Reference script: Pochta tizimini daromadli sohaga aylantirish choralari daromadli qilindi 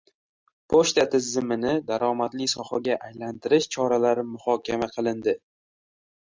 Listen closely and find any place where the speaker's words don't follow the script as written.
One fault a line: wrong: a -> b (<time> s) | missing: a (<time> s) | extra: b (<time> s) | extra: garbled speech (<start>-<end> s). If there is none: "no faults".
wrong: daromadli -> muhokama (4.4 s)